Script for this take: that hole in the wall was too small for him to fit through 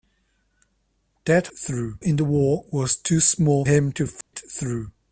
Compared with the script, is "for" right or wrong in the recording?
wrong